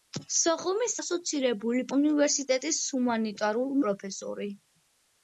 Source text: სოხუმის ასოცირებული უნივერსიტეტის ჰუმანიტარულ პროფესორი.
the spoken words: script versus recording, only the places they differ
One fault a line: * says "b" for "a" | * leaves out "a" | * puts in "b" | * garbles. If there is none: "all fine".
all fine